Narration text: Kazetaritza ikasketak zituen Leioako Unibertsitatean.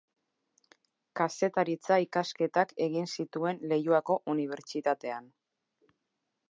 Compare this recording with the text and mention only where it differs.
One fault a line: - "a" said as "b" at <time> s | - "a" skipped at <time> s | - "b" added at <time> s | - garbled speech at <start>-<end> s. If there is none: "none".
- "egin" added at 2.9 s